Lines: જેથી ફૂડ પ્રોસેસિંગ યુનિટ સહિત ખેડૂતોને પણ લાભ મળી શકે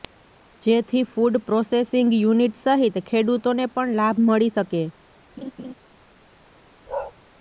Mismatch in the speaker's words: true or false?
false